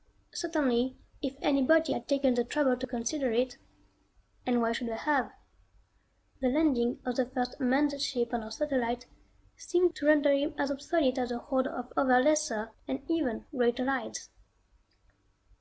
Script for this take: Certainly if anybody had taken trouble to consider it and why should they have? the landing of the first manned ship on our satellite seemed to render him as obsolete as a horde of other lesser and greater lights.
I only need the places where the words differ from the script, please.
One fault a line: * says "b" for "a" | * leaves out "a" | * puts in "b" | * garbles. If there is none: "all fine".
* puts in "the"
* puts in "even"